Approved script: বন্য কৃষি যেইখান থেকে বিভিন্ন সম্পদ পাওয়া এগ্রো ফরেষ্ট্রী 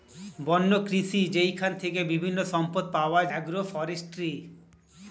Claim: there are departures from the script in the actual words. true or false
false